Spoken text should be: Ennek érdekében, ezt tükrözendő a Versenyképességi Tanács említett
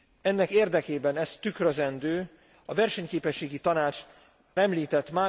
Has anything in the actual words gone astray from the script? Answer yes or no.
no